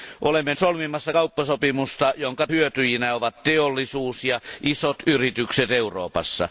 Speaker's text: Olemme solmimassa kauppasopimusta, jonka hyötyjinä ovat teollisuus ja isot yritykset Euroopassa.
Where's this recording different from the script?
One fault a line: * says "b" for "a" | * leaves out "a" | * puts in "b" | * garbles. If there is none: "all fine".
all fine